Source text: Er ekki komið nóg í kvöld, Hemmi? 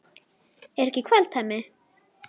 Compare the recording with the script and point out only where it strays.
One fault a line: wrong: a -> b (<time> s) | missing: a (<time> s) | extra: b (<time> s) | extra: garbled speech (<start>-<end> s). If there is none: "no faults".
missing: komið nóg (1.0 s)